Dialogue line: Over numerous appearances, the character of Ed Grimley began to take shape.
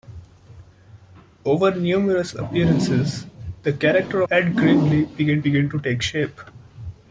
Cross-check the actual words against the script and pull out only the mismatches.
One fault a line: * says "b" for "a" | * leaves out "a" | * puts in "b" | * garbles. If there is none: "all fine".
* leaves out "of"
* puts in "began"